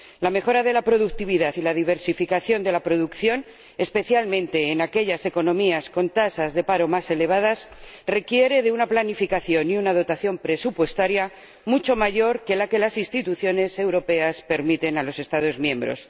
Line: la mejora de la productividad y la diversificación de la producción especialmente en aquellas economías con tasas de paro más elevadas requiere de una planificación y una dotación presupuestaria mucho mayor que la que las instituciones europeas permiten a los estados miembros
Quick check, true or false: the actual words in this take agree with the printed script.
true